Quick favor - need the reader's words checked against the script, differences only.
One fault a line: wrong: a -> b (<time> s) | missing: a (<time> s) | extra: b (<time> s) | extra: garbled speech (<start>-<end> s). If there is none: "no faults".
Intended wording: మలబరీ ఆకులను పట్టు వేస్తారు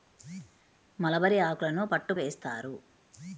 no faults